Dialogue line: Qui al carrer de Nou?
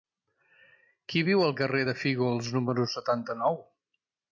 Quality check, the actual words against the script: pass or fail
fail